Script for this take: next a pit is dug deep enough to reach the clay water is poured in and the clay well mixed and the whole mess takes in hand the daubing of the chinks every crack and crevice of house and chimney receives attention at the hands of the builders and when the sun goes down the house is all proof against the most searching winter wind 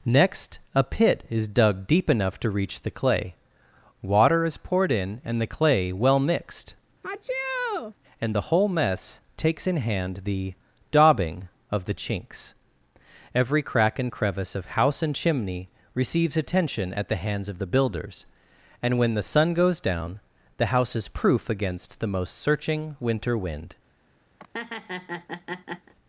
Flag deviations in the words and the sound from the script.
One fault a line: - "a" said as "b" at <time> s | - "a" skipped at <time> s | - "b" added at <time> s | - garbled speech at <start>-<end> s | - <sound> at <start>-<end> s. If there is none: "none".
- sneeze at 7.0-7.9 s
- "all" skipped at 21.1 s
- laugh at 24.4-25.9 s